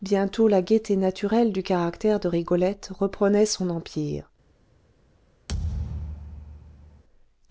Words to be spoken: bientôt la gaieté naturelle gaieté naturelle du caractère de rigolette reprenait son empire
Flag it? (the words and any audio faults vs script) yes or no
yes